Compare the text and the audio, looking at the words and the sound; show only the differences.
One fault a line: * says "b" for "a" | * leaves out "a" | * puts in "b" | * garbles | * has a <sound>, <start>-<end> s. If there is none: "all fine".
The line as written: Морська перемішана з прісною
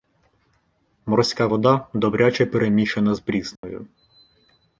* puts in "вода добряче"
* has a dropout, 3.6-3.6 s